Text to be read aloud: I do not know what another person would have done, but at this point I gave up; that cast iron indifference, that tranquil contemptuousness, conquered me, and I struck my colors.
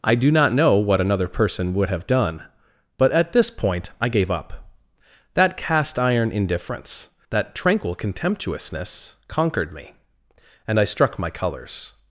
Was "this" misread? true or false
false